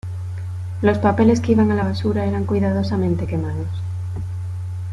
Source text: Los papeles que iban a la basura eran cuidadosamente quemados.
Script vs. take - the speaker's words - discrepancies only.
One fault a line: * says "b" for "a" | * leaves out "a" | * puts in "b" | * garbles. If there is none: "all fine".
all fine